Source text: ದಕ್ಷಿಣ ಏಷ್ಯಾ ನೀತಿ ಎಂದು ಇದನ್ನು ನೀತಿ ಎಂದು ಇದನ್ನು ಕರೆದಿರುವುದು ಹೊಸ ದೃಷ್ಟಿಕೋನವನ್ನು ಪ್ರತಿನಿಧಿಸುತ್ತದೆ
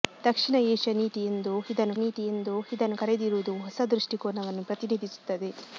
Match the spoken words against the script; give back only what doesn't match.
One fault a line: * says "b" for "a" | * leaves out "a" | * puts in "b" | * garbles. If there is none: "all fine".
all fine